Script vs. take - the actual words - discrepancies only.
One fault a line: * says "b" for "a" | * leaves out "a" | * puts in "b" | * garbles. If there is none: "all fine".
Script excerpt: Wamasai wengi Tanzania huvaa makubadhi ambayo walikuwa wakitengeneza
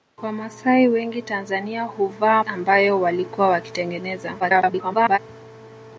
* leaves out "makubadhi"
* garbles